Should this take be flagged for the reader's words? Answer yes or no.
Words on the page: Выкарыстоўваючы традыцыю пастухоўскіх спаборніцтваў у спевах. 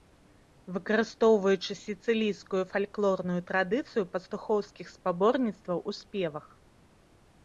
yes